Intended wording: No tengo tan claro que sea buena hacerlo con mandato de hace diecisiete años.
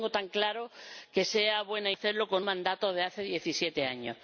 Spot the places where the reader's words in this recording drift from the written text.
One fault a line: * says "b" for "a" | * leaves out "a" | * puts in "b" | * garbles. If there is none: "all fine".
all fine